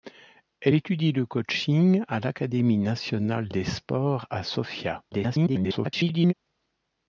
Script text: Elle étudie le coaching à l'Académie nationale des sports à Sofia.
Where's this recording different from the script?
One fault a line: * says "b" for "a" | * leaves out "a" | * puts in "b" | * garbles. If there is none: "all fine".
* garbles